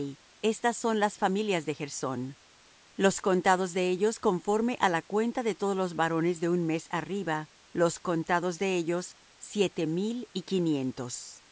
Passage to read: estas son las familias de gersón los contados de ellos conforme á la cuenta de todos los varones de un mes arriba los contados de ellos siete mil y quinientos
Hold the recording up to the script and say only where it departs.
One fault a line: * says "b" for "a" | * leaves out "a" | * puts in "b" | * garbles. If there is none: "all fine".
all fine